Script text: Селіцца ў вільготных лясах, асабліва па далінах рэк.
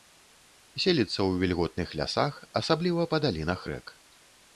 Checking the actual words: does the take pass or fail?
pass